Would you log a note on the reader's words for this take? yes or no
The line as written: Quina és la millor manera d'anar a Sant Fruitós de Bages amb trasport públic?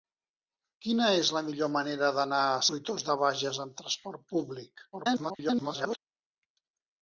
yes